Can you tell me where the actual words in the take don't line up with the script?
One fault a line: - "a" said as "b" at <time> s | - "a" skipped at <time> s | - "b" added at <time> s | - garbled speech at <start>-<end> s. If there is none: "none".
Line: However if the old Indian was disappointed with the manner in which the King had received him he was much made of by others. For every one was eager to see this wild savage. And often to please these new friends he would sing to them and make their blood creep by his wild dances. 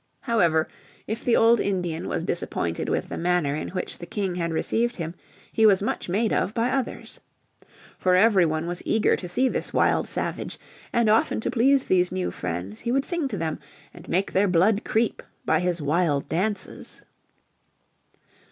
none